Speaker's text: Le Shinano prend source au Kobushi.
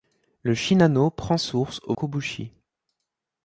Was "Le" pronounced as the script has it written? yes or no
yes